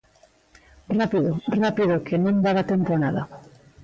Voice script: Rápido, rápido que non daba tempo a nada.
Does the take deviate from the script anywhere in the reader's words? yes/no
no